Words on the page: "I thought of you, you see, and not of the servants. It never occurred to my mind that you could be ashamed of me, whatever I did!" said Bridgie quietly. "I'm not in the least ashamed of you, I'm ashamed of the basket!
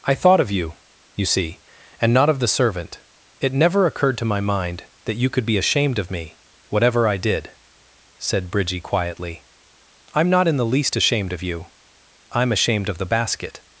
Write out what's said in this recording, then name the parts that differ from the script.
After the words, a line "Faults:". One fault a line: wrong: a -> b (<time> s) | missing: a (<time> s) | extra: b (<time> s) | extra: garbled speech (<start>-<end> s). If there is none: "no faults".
"I thought of you, you see, and not of the servant. It never occurred to my mind that you could be ashamed of me, whatever I did!" said Bridgie quietly. "I'm not in the least ashamed of you, I'm ashamed of the basket!
Faults:
wrong: servants -> servant (2.5 s)